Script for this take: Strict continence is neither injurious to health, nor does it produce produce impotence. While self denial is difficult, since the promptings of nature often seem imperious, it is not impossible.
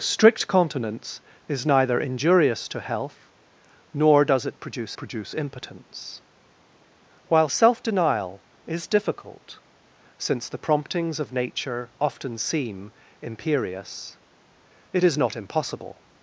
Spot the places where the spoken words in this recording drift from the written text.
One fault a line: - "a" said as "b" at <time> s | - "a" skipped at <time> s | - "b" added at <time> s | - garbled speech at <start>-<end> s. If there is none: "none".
none